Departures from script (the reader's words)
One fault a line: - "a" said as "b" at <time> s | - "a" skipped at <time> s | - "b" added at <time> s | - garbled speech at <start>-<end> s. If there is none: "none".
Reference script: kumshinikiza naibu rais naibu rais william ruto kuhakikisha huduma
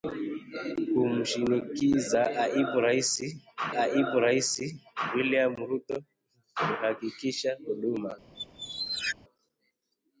none